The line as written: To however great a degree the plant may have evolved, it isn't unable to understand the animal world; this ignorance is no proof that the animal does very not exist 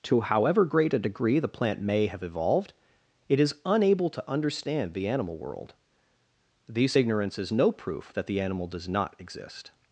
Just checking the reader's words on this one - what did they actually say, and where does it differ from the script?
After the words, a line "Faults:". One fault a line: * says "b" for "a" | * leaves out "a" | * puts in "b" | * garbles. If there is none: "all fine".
To however great a degree the plant may have evolved, it is unable to understand the animal world; this ignorance is no proof that the animal does not exist
Faults:
* says "is" for "isn't"
* leaves out "very"